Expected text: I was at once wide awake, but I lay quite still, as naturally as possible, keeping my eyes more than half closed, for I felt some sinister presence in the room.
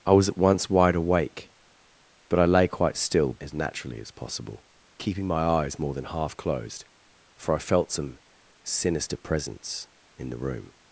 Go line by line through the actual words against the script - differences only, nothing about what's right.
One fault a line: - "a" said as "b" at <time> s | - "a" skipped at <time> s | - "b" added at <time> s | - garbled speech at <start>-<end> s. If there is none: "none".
none